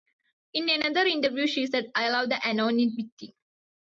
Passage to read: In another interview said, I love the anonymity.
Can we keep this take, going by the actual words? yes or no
no